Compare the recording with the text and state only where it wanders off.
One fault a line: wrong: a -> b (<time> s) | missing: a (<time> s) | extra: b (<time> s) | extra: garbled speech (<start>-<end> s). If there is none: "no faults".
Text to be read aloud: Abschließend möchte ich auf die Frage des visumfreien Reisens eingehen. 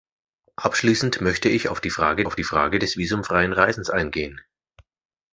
extra: auf die Frage (2.2 s)